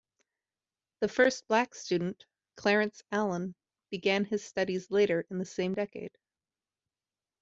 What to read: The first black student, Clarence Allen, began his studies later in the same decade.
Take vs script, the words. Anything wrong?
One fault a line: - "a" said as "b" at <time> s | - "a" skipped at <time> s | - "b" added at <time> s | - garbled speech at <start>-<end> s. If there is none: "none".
none